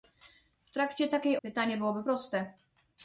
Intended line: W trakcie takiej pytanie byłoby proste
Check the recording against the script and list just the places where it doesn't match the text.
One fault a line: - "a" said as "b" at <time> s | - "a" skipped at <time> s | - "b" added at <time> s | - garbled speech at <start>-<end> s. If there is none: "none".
none